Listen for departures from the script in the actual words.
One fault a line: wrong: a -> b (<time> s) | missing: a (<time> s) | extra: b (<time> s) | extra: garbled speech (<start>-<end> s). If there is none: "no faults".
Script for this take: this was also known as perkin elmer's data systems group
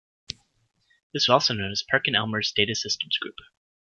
missing: was (1.3 s)